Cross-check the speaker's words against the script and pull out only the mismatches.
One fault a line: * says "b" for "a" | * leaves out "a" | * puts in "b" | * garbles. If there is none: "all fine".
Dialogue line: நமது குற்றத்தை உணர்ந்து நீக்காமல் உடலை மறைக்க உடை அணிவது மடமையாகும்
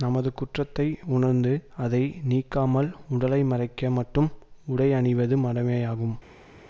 * puts in "அதை"
* puts in "மட்டும்"